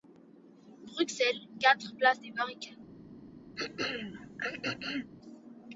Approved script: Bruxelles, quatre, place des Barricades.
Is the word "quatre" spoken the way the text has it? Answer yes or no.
yes